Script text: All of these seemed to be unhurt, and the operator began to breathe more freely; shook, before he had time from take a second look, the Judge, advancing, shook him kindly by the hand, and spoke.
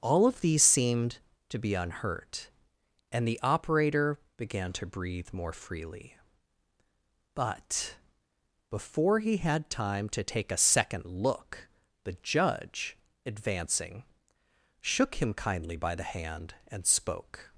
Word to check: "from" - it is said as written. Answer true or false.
false